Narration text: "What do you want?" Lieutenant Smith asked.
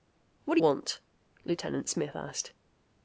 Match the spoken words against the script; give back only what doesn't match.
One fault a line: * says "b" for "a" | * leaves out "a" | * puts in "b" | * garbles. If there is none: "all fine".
* leaves out "you"